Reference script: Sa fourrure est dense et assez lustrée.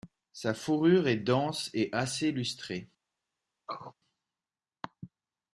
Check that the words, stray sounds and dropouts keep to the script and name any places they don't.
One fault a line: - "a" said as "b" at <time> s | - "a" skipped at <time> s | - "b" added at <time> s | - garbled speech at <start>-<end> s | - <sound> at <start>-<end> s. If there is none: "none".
- throat clearing at 3.7-3.9 s